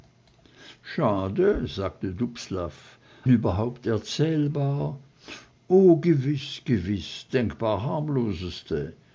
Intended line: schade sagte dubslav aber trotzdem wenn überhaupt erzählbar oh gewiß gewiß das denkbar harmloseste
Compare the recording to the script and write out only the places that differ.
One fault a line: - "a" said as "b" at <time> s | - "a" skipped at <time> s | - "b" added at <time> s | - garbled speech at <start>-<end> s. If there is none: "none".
- "aber trotzdem wenn" skipped at 3.0 s
- "das" skipped at 7.3 s